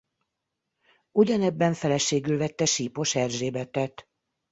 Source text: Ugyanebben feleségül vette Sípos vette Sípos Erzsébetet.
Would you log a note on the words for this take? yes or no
yes